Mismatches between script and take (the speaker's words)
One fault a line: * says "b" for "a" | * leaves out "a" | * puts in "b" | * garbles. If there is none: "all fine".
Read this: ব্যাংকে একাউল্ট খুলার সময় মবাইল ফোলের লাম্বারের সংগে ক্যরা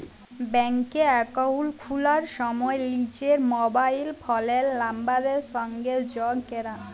* puts in "লিজের"
* puts in "যগ"